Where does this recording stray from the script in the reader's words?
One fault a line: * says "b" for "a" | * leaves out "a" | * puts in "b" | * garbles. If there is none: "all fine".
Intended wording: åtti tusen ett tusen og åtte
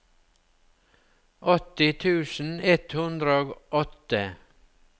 * says "hundre" for "tusen"